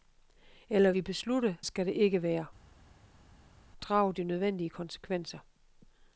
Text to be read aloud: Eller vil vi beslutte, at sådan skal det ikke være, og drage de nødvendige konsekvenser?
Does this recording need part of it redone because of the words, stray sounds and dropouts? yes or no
yes